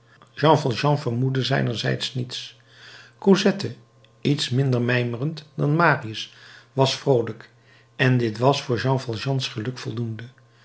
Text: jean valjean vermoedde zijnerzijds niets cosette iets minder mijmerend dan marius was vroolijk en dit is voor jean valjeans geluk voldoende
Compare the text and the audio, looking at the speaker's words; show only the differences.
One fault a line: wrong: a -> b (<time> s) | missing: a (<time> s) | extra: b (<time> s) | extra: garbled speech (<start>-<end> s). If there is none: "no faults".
wrong: is -> was (8.4 s)